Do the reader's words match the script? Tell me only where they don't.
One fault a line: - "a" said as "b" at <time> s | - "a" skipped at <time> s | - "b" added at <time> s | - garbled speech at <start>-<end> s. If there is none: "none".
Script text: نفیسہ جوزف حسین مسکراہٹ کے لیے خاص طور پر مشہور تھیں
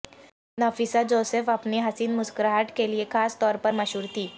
- "اپنی" added at 1.5 s